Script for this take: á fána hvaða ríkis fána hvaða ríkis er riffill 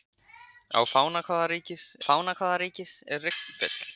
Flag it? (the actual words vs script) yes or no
no